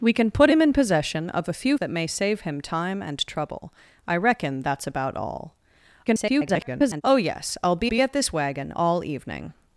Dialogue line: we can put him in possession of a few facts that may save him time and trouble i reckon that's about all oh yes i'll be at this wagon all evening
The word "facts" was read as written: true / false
false